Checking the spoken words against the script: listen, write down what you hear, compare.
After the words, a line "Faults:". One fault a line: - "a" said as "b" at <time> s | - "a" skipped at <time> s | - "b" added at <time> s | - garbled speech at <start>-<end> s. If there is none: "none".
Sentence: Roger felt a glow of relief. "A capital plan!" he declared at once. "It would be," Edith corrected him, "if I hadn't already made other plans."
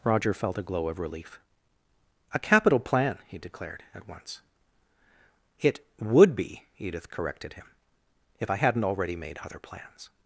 Roger felt a glow of relief. "A capital plan!" he declared at once. "It would be," Edith corrected him, "if I hadn't already made other plans."
Faults:
none